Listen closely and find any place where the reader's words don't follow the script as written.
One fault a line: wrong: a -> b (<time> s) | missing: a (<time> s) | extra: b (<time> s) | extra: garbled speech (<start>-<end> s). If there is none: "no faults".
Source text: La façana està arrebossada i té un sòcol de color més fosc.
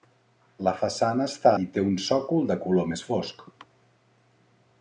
missing: arrebossada (1.5 s)